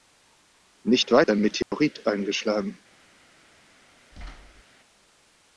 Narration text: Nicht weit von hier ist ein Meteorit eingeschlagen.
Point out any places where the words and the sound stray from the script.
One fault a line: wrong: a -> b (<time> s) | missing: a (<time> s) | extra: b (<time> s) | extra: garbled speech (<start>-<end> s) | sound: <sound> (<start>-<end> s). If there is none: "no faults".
missing: von hier ist (1.3 s)
sound: dropout (1.6-1.7 s)
sound: thud (4.1-4.6 s)